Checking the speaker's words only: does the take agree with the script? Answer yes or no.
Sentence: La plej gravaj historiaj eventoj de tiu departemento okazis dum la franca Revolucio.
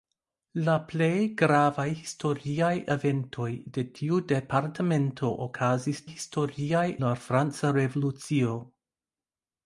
no